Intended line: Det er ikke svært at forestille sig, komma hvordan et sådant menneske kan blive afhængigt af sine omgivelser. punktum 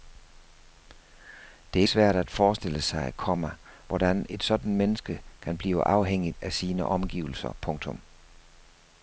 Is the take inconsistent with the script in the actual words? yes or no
yes